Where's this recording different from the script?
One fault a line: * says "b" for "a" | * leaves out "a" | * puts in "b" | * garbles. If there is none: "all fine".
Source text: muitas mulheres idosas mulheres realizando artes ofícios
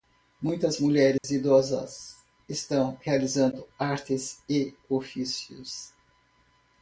* says "estão" for "mulheres"
* puts in "e"